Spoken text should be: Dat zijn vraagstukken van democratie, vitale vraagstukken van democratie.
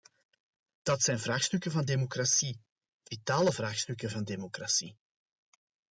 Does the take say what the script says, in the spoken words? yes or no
yes